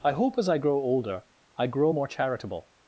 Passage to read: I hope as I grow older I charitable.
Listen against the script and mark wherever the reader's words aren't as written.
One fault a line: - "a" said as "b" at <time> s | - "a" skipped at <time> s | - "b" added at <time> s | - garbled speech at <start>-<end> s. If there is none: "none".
- "grow more" added at 1.7 s